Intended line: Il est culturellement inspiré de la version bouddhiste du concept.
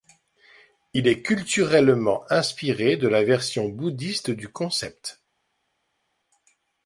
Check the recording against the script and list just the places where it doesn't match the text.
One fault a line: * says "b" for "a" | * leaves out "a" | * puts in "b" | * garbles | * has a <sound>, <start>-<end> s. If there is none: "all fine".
all fine